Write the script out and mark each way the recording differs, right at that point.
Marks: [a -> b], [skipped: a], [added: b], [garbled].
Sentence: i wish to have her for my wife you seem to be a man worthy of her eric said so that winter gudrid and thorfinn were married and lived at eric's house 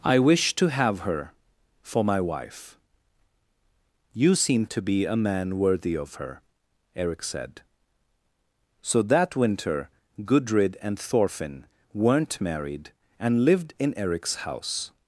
i wish to have her for my wife you seem to be a man worthy of her eric said so that winter gudrid and thorfinn [were -> weren't] married and lived [at -> in] eric's house